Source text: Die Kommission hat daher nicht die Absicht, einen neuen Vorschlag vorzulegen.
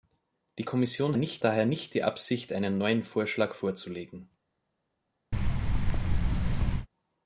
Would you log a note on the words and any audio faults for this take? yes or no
yes